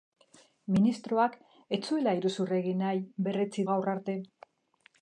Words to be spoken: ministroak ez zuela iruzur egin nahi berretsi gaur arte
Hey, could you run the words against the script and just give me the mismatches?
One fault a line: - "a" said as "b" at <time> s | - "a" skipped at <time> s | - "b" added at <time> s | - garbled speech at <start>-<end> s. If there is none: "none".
none